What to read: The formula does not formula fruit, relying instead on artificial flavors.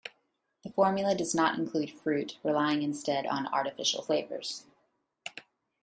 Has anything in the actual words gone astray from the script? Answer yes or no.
yes